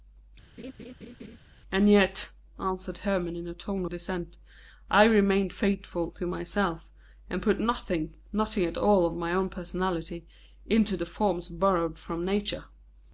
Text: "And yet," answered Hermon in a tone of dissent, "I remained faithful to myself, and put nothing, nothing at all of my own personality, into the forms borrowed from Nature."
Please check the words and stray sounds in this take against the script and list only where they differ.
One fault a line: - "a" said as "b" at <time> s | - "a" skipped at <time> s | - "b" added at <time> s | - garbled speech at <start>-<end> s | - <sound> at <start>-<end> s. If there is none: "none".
- laugh at 0.6-1.4 s
- "of" skipped at 3.8 s